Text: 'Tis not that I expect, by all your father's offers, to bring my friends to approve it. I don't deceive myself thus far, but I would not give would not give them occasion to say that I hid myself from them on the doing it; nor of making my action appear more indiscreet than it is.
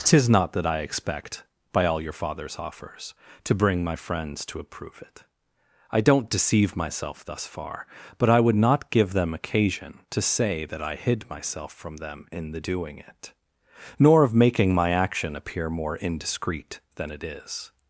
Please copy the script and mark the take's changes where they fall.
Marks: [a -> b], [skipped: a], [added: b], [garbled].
'Tis not that I expect, by all your father's offers, to bring my friends to approve it. I don't deceive myself thus far, but I would not give [skipped: would not give] them occasion to say that I hid myself from them [on -> in] the doing it; nor of making my action appear more indiscreet than it is.